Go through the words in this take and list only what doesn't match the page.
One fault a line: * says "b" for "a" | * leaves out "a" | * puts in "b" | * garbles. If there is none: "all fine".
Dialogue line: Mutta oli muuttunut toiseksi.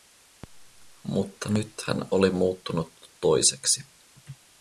* puts in "nyt hän"